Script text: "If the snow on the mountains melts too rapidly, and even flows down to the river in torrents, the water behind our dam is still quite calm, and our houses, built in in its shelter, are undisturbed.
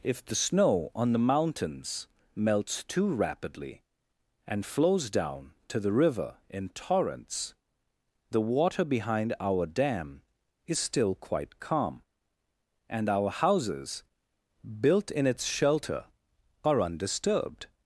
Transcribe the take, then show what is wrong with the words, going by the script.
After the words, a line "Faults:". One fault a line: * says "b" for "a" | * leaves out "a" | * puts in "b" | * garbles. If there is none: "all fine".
"If the snow on the mountains melts too rapidly, and flows down to the river in torrents, the water behind our dam is still quite calm, and our houses, built in its shelter, are undisturbed.
Faults:
* leaves out "even"
* leaves out "in"